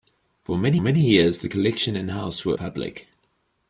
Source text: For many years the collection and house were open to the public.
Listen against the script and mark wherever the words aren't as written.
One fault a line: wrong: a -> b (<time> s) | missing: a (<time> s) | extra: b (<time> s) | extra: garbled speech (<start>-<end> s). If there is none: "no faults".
extra: many (0.8 s)
missing: open to the (2.5 s)